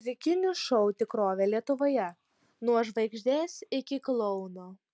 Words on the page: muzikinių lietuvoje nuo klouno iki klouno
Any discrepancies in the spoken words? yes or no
yes